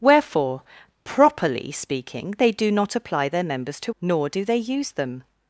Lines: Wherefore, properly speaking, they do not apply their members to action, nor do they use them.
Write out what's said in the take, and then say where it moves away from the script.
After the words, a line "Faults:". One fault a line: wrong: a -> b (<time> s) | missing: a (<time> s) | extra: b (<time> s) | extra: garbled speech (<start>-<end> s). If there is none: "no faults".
Wherefore, properly speaking, they do not apply their members to nor do they use them.
Faults:
missing: action (4.0 s)